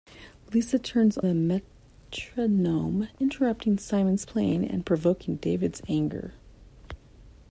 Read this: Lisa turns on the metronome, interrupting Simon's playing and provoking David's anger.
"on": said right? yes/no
no